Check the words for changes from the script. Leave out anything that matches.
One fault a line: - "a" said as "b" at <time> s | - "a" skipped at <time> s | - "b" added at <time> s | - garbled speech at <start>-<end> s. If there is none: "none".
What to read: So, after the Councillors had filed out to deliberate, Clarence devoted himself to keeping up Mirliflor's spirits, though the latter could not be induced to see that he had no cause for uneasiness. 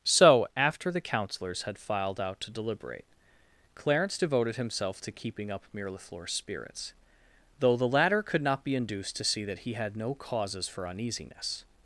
- "cause" said as "causes" at 10.1 s